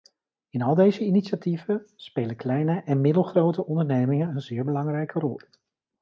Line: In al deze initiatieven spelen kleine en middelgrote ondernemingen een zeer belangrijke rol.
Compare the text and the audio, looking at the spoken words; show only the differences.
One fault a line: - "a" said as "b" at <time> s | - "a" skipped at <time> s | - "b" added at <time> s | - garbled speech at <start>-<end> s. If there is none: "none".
none